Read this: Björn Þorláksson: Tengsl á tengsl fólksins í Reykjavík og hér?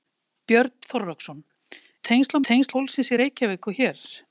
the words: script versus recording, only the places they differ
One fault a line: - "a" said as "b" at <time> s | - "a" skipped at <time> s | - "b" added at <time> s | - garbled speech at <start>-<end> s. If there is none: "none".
none